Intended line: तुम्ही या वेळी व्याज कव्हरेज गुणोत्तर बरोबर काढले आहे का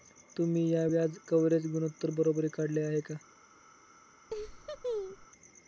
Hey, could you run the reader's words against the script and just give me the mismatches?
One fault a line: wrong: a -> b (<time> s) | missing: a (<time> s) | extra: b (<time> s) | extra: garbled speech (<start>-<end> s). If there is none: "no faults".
missing: वेळी (0.8 s)